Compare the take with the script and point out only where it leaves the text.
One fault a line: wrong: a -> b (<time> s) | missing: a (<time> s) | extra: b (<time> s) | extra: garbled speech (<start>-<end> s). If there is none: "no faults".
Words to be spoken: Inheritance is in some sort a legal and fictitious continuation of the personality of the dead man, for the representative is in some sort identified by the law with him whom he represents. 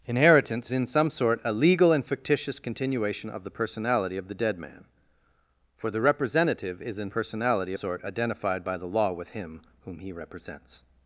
missing: is (0.7 s)
wrong: some -> personality (7.1 s)